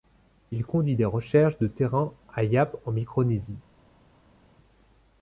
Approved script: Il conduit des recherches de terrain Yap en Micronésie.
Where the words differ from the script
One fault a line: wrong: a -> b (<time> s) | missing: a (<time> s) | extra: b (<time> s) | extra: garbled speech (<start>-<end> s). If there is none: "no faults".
extra: à (2.3 s)